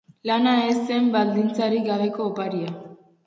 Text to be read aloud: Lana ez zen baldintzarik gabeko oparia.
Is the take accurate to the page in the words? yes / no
yes